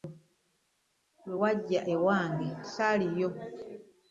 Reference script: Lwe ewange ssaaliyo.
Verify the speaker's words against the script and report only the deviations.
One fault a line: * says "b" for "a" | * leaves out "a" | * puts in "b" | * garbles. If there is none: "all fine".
* puts in "wajja"